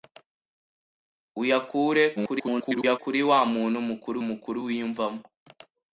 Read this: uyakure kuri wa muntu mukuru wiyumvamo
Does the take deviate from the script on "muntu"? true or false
false